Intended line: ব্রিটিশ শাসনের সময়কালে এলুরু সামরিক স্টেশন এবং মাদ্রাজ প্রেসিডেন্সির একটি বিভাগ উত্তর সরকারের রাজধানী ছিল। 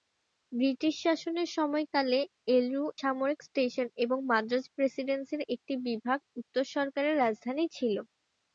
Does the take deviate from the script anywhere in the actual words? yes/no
no